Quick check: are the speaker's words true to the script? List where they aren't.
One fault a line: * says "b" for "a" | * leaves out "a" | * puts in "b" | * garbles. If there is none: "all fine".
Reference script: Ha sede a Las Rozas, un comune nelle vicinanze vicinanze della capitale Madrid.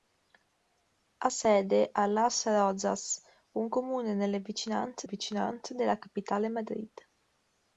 all fine